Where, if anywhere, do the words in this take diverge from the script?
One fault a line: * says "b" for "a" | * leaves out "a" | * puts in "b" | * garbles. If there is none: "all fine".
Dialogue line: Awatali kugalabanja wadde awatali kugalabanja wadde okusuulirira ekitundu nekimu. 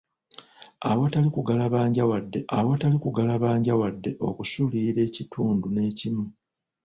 all fine